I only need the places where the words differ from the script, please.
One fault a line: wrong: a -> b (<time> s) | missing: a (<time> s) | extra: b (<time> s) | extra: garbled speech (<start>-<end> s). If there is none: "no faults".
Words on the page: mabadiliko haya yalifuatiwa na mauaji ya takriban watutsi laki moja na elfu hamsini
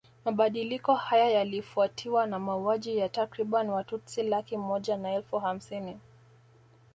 no faults